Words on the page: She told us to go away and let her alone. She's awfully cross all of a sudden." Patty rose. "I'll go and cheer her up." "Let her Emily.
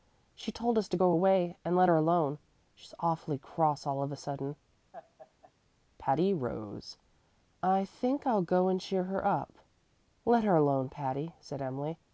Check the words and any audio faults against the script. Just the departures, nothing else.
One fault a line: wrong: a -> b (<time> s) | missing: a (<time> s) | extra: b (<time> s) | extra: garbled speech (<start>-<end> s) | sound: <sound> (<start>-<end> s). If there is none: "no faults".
sound: laugh (4.9-5.5 s)
extra: I think (7.6 s)
extra: alone Patty said (10.6 s)